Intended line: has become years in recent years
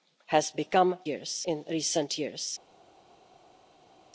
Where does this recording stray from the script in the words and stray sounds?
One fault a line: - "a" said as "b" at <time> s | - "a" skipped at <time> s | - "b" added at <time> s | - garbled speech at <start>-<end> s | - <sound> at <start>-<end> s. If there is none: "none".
none